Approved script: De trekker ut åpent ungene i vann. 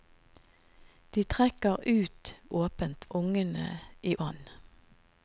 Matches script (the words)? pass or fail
pass